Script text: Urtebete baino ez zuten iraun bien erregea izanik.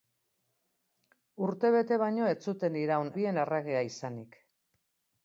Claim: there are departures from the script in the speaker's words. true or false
false